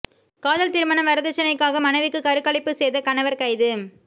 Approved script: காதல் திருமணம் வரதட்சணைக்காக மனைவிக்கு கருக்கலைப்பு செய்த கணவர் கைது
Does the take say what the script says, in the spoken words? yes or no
yes